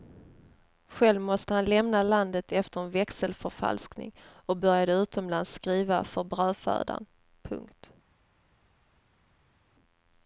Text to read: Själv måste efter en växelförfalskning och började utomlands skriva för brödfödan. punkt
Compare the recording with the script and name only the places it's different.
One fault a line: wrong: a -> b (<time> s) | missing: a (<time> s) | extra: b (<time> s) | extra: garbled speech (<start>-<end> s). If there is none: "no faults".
extra: han lämna landet (1.5 s)